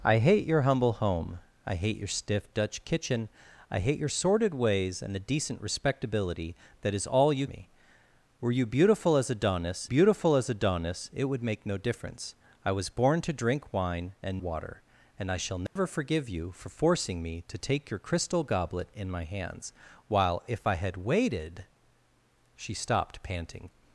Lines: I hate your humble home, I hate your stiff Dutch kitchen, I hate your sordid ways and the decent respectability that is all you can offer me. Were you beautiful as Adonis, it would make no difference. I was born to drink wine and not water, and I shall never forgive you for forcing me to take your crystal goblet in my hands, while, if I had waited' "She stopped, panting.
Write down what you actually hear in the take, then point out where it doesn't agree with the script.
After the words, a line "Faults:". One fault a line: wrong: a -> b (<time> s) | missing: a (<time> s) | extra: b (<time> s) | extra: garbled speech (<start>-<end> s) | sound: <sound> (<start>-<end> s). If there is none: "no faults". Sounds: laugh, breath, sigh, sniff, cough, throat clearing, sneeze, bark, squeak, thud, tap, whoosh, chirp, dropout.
I hate your humble home, I hate your stiff Dutch kitchen, I hate your sordid ways and the decent respectability that is all you me. Were you beautiful as Adonis beautiful as Adonis, it would make no difference. I was born to drink wine and water, and I shall never forgive you for forcing me to take your crystal goblet in my hands, while, if I had waited' "She stopped, panting.
Faults:
missing: can offer (7.5 s)
extra: beautiful as Adonis (9.8 s)
missing: not (14.4 s)
sound: dropout (15.7-15.8 s)